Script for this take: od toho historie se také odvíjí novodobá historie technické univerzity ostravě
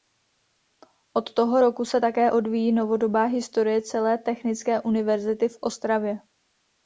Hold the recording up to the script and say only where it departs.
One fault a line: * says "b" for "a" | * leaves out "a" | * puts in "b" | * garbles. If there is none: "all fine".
* says "roku" for "historie"
* puts in "celé"
* puts in "v"